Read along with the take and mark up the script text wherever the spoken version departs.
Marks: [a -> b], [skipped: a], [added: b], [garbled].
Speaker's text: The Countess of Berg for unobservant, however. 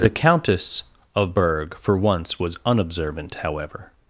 The Countess of Berg for [added: once was] unobservant, however.